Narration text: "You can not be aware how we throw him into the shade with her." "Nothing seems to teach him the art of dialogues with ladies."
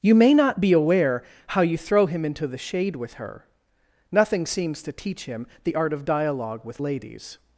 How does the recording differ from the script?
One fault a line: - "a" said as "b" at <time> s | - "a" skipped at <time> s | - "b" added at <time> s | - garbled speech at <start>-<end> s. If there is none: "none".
- "can" said as "may" at 0.1 s
- "we" said as "you" at 1.6 s
- "dialogues" said as "dialogue" at 6.0 s